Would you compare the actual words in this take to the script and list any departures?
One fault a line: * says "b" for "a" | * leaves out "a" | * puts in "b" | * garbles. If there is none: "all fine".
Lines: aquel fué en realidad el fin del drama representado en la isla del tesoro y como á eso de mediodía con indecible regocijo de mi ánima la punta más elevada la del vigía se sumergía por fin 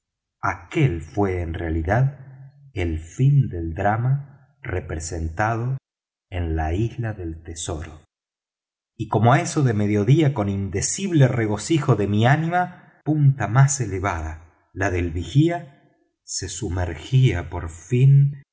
* leaves out "la"